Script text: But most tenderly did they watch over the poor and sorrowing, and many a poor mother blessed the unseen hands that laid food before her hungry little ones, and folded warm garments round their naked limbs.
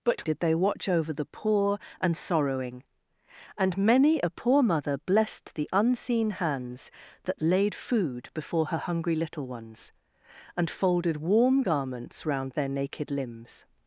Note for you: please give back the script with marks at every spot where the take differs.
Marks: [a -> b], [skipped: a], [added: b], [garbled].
But [skipped: most tenderly] did they watch over the poor and sorrowing, and many a poor mother blessed the unseen hands that laid food before her hungry little ones, and folded warm garments round their naked limbs.